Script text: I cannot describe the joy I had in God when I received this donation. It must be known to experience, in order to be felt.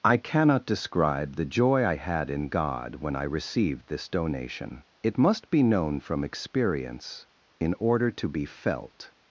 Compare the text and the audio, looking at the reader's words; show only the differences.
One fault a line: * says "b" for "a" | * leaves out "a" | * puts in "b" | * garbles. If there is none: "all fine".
* says "from" for "to"